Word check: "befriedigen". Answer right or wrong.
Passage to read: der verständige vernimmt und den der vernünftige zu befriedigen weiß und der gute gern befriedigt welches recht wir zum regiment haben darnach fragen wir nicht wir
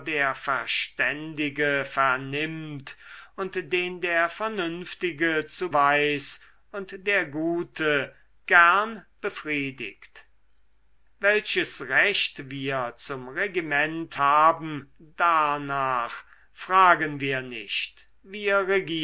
wrong